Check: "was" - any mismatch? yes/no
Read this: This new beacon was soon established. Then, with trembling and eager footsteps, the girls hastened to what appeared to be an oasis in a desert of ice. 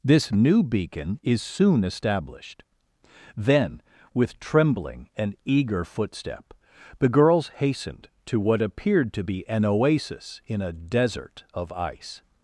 yes